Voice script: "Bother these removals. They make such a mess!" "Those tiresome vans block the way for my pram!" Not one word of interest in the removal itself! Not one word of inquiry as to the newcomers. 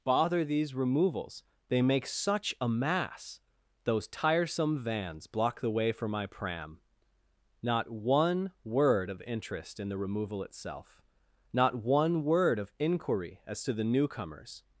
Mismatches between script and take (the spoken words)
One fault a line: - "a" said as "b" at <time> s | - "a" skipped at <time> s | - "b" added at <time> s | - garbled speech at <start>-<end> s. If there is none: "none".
- "mess" said as "mass" at 2.7 s